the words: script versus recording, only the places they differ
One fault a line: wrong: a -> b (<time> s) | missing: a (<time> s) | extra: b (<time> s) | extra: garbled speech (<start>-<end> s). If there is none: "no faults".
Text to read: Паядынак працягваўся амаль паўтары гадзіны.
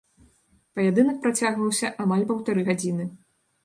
no faults